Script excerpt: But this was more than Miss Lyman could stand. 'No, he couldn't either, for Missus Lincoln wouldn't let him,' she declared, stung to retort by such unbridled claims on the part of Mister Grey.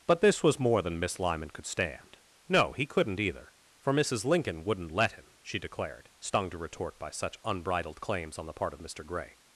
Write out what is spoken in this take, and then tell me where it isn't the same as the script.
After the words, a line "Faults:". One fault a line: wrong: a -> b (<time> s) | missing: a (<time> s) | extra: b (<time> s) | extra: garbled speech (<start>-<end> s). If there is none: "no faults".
But this was more than Miss Lyman could stand. 'No, he couldn't either, for Missus Lincoln wouldn't let him,' she declared, stung to retort by such unbridled claims on the part of Mister Grey.
Faults:
no faults